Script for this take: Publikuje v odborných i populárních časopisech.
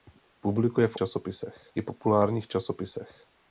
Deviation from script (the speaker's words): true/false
true